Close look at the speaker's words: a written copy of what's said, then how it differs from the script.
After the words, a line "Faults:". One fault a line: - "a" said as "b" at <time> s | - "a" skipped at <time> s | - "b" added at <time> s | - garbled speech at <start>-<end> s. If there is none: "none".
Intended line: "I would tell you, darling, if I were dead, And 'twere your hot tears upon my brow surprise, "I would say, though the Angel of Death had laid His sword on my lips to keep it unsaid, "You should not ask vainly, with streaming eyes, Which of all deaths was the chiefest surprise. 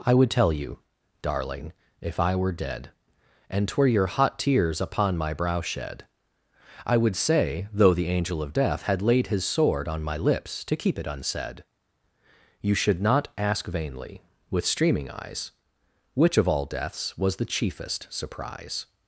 "I would tell you, darling, if I were dead, And 'twere your hot tears upon my brow shed, "I would say, though the Angel of Death had laid His sword on my lips to keep it unsaid, "You should not ask vainly, with streaming eyes, Which of all deaths was the chiefest surprise.
Faults:
- "surprise" said as "shed" at 5.6 s